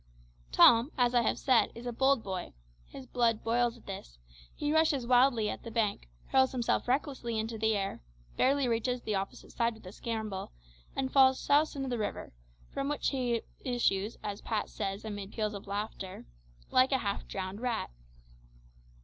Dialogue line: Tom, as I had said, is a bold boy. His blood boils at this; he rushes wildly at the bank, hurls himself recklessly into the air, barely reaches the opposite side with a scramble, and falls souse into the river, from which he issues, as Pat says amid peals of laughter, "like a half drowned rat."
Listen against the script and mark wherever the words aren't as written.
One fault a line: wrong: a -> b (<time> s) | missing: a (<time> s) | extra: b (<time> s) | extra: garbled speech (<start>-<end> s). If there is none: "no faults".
wrong: had -> have (1.2 s)